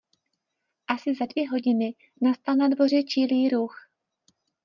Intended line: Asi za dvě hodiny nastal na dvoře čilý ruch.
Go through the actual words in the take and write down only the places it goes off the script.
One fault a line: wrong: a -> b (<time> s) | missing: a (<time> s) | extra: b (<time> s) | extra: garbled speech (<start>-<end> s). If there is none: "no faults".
no faults